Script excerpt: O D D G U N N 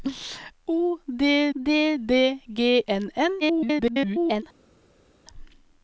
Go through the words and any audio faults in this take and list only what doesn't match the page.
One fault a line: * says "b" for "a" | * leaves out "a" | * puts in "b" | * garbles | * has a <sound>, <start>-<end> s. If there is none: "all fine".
* puts in "D"
* leaves out "U"
* garbles